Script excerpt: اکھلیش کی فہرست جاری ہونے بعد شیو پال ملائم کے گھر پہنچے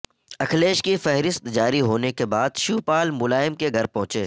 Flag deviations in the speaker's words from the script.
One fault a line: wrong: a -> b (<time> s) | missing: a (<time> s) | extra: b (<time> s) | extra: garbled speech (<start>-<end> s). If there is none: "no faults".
extra: کے (2.1 s)